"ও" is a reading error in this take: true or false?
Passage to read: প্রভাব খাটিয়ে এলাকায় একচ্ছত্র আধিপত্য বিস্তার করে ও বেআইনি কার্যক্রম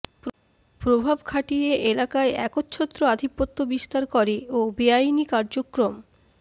false